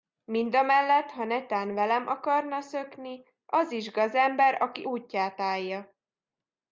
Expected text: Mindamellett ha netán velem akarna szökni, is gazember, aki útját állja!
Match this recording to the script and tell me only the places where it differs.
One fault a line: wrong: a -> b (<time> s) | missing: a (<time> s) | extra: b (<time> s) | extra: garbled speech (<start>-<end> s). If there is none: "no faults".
extra: az (3.5 s)